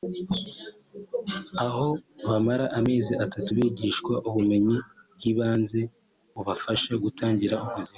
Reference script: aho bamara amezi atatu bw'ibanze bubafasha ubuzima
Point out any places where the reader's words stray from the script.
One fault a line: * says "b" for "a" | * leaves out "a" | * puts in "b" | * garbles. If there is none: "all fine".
* puts in "bigishwa ubumenyi"
* puts in "gutangira"